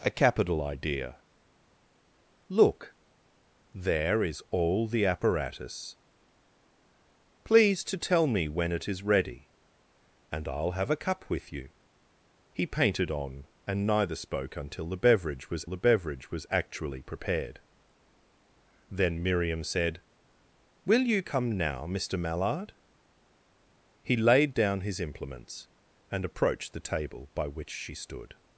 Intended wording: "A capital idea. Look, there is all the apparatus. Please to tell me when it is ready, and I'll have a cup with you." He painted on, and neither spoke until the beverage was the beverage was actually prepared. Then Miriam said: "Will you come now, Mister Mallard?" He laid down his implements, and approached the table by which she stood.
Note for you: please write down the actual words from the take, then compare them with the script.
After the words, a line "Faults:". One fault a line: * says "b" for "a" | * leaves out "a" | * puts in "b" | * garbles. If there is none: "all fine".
"A capital idea. Look, there is all the apparatus. Please to tell me when it is ready, and I'll have a cup with you." He painted on, and neither spoke until the beverage was the beverage was actually prepared. Then Miriam said: "Will you come now, Mister Mallard?" He laid down his implements, and approached the table by which she stood.
Faults:
all fine